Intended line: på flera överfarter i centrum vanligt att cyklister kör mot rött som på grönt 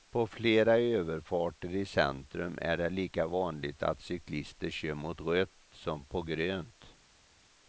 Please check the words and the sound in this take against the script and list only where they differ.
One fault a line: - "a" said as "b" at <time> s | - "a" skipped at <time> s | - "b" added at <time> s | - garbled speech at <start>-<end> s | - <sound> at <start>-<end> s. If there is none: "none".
- "är det lika" added at 2.6 s